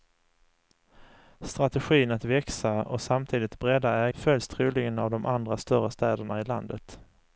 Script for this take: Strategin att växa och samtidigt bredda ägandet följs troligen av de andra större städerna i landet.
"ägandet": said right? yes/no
no